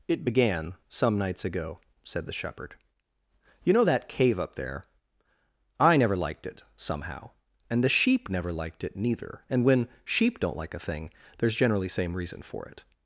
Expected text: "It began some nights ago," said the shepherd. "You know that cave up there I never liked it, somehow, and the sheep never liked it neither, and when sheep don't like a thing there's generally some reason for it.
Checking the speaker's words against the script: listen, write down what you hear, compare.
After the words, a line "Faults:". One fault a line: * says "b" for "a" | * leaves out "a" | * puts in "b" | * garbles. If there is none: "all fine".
"It began some nights ago," said the shepherd. "You know that cave up there I never liked it, somehow, and the sheep never liked it neither, and when sheep don't like a thing there's generally same reason for it.
Faults:
* says "same" for "some"